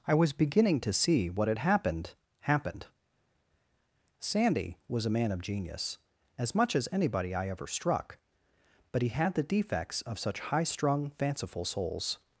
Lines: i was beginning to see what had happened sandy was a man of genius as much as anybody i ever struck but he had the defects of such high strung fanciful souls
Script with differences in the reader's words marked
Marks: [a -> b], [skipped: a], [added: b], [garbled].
i was beginning to see what had happened [added: happened] sandy was a man of genius as much as anybody i ever struck but he had the defects of such high strung fanciful souls